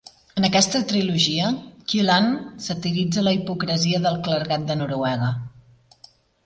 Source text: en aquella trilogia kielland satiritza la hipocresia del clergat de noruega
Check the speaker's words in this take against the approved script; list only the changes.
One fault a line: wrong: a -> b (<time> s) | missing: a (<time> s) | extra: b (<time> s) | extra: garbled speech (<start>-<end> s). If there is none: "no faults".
wrong: aquella -> aquesta (0.5 s)